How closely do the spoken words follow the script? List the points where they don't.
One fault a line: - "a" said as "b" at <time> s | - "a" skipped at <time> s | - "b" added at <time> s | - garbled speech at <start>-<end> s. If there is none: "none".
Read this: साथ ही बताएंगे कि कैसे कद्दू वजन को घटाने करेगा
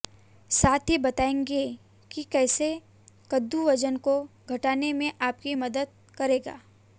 - "में आपकी मदद" added at 4.9 s